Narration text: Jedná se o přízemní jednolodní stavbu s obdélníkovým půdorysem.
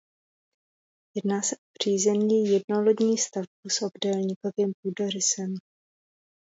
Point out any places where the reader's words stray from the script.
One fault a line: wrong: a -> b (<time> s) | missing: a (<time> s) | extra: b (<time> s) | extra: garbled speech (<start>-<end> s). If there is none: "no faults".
no faults